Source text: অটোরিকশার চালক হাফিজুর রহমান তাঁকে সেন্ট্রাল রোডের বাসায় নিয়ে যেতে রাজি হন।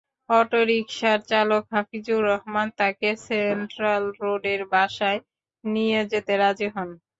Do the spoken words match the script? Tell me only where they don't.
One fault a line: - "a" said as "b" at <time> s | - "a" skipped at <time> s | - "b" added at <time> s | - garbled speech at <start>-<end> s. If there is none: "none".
none